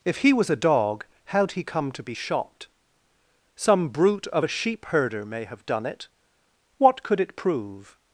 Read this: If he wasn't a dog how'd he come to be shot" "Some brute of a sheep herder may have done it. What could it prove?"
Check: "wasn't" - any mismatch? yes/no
yes